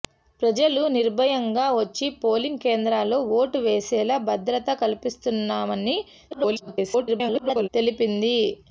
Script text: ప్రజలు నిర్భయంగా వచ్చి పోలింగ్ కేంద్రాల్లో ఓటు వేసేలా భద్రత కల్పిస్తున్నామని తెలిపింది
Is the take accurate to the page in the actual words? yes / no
no